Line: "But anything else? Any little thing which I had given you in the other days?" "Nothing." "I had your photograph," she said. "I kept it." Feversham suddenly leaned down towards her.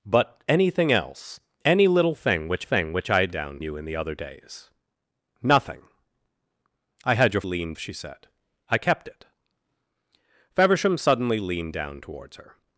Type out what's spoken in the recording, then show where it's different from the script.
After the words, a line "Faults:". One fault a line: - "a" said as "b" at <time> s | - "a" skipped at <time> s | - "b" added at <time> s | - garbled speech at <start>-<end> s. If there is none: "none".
"But anything else? Any little thing which thing which I had down you in the other days?" "Nothing." "I had your leaned," she said. "I kept it." Feversham suddenly leaned down towards her.
Faults:
- "thing which" added at 2.6 s
- "given" said as "down" at 3.3 s
- "photograph" said as "leaned" at 7.4 s